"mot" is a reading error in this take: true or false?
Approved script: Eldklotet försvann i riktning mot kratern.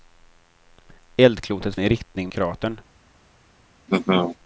true